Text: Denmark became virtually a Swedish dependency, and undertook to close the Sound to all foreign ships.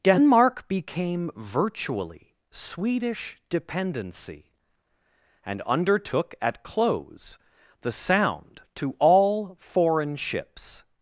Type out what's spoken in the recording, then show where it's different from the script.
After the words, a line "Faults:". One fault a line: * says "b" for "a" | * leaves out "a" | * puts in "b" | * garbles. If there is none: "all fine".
Denmark became virtually Swedish dependency, and undertook at close the Sound to all foreign ships.
Faults:
* leaves out "a"
* says "at" for "to"